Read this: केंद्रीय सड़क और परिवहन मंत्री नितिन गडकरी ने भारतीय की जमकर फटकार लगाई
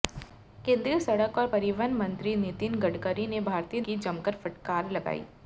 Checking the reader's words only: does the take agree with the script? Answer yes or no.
yes